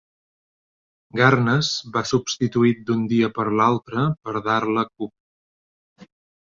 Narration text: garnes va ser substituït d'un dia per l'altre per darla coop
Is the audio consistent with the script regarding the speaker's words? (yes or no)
no